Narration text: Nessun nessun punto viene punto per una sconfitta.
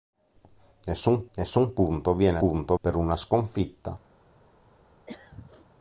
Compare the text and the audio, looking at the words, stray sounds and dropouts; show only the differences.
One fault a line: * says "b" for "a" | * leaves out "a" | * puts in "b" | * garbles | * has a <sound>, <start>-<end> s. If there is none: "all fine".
* has a throat clearing, 5.1-5.7 s